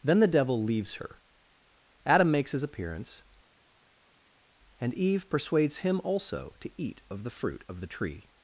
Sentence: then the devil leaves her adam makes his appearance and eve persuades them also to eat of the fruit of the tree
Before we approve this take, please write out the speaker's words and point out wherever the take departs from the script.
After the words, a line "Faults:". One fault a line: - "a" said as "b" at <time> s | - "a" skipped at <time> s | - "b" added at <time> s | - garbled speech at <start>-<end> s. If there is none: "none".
then the devil leaves her adam makes his appearance and eve persuades him also to eat of the fruit of the tree
Faults:
- "them" said as "him" at 5.8 s